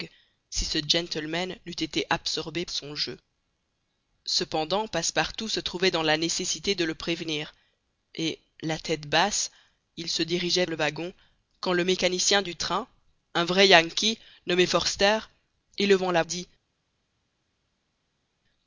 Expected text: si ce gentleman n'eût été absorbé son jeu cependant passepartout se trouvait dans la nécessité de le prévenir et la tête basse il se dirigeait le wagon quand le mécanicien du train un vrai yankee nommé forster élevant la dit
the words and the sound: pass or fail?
pass